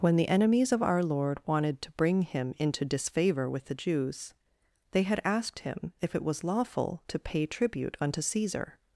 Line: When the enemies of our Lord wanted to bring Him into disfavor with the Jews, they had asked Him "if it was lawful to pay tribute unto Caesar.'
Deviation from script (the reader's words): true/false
false